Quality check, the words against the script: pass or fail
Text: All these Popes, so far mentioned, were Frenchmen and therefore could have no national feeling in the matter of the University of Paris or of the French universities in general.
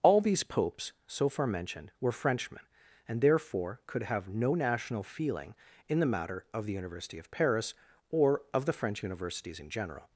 pass